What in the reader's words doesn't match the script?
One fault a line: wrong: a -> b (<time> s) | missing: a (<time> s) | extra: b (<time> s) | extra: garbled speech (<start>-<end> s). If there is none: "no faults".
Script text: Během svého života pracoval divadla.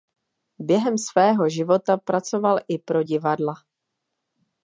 extra: i pro (2.7 s)